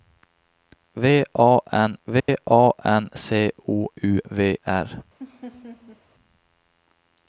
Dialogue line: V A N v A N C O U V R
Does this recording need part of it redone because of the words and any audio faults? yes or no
yes